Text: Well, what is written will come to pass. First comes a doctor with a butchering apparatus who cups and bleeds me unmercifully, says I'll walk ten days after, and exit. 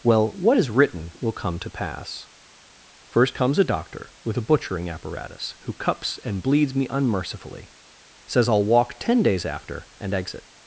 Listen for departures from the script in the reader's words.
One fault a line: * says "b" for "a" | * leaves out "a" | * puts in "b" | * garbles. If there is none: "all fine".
all fine